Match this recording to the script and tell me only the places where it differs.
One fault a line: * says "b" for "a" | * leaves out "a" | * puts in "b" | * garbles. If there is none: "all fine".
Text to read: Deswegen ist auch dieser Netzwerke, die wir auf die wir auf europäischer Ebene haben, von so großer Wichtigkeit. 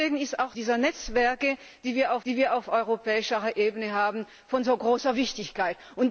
all fine